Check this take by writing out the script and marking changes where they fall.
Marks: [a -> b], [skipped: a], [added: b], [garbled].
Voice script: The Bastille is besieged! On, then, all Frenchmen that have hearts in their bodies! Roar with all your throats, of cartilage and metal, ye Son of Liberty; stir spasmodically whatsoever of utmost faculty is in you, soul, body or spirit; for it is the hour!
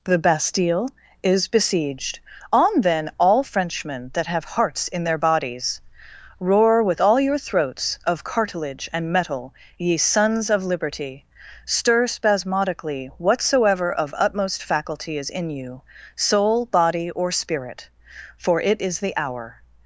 The Bastille is besieged! On, then, all Frenchmen that have hearts in their bodies! Roar with all your throats, of cartilage and metal, ye [Son -> Sons] of Liberty; stir spasmodically whatsoever of utmost faculty is in you, soul, body or spirit; for it is the hour!